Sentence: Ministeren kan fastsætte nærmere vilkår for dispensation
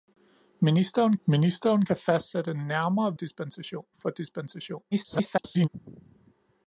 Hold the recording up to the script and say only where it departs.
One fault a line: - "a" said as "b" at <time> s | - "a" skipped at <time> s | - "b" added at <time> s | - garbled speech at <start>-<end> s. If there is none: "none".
- "ministeren" added at 1.2 s
- "vilkår" said as "dispensation" at 3.1 s
- garbled speech at 4.9-5.7 s